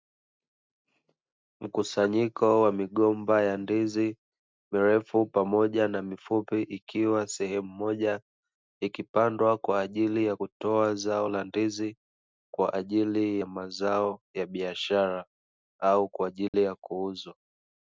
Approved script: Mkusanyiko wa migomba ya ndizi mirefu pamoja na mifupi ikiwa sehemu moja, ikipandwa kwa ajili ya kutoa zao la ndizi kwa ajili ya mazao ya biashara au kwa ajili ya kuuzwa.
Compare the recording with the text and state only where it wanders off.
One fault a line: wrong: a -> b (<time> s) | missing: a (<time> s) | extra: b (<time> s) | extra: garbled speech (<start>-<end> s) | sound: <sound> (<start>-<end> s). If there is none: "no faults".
sound: dropout (16.5-16.5 s)